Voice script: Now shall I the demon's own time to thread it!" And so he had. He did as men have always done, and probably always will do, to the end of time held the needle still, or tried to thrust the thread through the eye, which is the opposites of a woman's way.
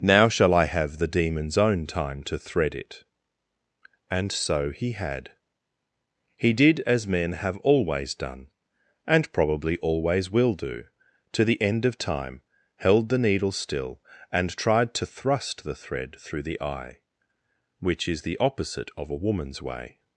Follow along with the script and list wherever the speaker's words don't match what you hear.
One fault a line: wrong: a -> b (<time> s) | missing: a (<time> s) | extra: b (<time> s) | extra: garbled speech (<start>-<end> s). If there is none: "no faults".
extra: have (0.7 s)
wrong: or -> and (14.3 s)
wrong: opposites -> opposite (18.4 s)